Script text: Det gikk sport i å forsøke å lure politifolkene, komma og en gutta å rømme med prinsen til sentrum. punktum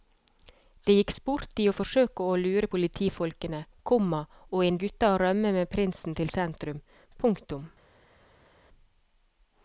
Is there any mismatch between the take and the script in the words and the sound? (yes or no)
no